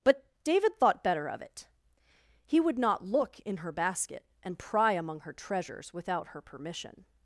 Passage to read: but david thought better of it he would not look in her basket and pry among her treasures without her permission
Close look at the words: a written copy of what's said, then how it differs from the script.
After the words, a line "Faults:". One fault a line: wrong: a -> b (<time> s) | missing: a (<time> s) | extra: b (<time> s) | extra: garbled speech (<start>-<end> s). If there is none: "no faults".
but david thought better of it he would not look in her basket and pry among her treasures without her permission
Faults:
no faults